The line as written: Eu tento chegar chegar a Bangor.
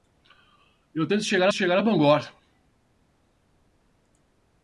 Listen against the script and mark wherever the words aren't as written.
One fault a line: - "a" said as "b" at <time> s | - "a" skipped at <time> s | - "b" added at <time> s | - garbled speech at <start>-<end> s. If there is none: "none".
none